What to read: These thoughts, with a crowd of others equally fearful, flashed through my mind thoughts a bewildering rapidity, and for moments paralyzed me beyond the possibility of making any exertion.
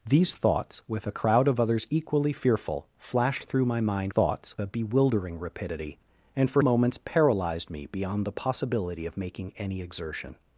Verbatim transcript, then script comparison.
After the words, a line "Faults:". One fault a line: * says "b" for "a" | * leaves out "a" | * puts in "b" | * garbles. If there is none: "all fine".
These thoughts, with a crowd of others equally fearful, flashed through my mind thoughts a bewildering rapidity, and for moments paralyzed me beyond the possibility of making any exertion.
Faults:
all fine